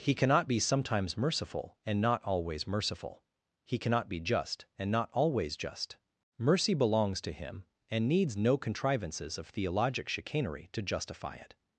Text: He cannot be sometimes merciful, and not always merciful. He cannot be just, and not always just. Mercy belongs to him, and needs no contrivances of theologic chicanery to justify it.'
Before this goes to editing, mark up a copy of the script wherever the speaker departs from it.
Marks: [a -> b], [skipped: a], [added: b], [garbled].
He cannot be sometimes merciful, and not always merciful. He cannot be just, and not always just. Mercy belongs to him, and needs no contrivances of theologic chicanery to justify it.'